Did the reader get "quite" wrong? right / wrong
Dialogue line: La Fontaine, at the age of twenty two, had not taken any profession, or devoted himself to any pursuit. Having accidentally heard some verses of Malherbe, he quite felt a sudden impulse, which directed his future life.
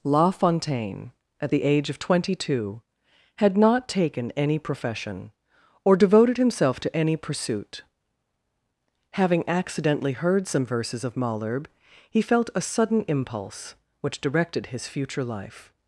wrong